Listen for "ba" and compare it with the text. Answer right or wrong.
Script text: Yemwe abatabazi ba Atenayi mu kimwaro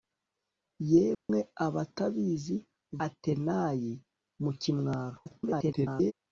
wrong